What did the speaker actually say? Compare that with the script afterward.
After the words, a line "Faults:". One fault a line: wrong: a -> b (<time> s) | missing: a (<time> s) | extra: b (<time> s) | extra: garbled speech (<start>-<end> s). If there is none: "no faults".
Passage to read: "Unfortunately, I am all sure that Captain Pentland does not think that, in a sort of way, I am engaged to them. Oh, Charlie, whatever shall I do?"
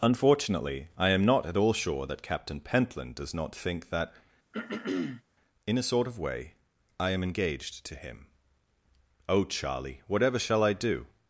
"Unfortunately, I am not at all sure that Captain Pentland does not think that, in a sort of way, I am engaged to him. Oh, Charlie, whatever shall I do?"
Faults:
extra: not at (1.2 s)
wrong: them -> him (8.0 s)